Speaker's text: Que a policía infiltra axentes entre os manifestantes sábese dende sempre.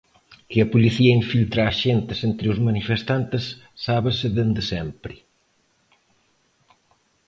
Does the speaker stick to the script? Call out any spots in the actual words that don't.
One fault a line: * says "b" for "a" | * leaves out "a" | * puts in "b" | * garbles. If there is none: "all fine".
all fine